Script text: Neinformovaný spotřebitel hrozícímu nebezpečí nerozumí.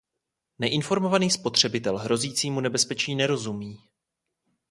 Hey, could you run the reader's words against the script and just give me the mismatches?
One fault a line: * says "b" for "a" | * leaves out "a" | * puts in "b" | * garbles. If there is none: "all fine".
all fine